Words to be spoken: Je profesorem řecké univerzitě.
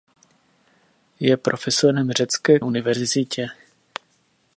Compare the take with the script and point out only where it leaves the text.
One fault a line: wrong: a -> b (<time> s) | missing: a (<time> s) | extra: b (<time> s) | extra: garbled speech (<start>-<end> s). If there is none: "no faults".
no faults